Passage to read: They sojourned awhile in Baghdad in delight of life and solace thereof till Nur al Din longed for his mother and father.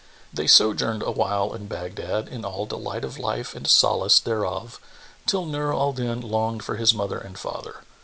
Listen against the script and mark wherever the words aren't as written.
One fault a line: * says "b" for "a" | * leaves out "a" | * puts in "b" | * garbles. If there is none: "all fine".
* puts in "all"